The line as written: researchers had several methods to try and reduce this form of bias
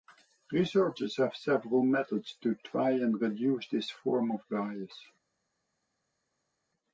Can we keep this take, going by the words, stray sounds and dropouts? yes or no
no